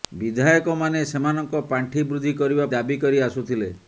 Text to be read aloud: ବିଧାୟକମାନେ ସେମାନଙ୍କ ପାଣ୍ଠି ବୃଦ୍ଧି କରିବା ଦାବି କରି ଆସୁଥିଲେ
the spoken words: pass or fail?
pass